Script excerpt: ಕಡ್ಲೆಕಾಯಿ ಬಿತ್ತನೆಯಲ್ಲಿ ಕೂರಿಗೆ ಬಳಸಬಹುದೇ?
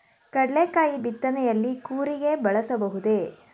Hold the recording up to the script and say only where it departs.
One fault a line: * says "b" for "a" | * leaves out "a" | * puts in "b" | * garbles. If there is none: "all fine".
all fine